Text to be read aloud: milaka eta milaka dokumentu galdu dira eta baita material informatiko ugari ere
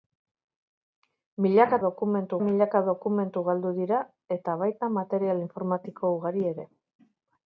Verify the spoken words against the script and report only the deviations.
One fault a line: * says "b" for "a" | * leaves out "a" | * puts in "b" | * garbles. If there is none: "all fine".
* says "dokumentu" for "eta"